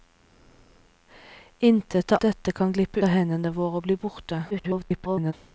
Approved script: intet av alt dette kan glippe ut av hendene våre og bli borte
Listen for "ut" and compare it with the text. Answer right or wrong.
wrong